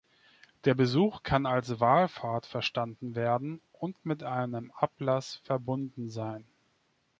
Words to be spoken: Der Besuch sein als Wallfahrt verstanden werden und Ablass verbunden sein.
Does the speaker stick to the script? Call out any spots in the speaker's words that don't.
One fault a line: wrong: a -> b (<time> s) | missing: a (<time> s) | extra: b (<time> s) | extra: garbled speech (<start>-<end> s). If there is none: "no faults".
wrong: sein -> kann (1.2 s)
extra: mit einem (4.0 s)